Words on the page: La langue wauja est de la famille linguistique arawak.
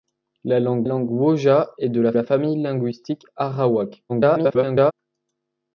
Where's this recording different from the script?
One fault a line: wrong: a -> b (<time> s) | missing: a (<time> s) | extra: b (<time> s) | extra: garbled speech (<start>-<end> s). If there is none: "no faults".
extra: langue (0.8 s)
extra: la (2.1 s)
extra: garbled speech (4.1-4.9 s)